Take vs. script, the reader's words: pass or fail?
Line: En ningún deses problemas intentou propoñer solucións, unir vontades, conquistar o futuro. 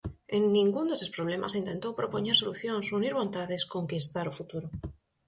pass